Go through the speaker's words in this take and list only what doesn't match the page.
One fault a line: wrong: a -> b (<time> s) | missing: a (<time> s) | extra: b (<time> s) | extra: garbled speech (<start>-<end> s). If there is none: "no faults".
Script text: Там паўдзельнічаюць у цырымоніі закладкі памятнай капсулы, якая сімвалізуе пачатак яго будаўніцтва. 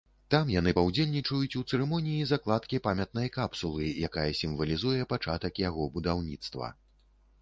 extra: яны (0.5 s)